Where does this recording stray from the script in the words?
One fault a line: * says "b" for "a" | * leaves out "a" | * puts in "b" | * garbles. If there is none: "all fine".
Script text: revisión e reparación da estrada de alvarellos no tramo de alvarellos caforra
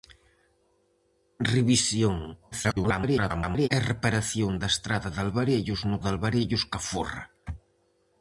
* garbles
* leaves out "tramo"